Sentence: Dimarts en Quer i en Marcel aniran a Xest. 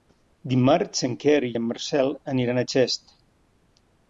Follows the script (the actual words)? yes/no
yes